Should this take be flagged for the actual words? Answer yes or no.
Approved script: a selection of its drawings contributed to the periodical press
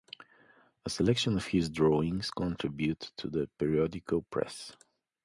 yes